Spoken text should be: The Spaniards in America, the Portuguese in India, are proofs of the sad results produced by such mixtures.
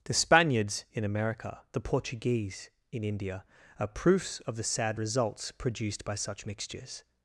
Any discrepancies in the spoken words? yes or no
no